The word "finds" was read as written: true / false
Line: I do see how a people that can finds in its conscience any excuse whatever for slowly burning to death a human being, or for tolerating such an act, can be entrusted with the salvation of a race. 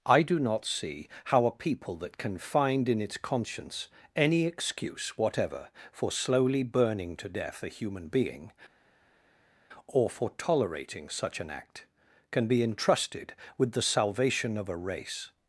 false